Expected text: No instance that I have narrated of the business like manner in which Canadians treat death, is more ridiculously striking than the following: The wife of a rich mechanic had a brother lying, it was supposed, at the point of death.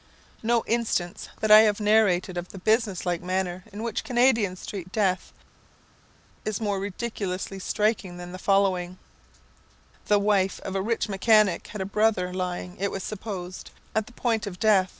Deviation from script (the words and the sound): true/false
false